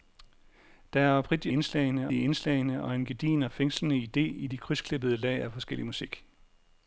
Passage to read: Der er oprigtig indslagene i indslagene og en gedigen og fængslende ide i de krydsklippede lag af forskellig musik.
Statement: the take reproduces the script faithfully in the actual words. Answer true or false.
true